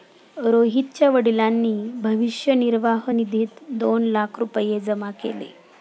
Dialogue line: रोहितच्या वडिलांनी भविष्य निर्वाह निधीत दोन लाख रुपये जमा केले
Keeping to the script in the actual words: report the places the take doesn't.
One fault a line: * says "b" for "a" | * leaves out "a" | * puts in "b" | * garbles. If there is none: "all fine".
all fine